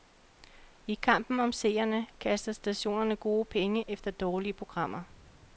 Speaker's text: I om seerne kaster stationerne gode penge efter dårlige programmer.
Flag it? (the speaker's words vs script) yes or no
yes